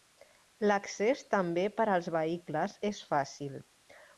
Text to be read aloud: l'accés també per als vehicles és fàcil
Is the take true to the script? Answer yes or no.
yes